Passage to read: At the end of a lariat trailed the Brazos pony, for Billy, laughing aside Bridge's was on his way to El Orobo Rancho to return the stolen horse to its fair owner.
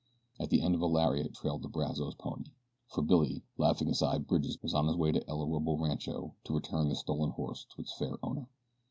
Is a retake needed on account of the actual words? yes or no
no